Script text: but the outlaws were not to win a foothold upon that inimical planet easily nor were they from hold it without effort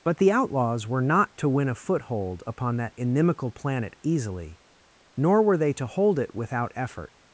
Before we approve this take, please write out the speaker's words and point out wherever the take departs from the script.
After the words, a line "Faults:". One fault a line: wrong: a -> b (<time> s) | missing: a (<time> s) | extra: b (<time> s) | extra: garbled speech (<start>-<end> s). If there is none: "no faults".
but the outlaws were not to win a foothold upon that inimical planet easily nor were they to hold it without effort
Faults:
wrong: from -> to (5.7 s)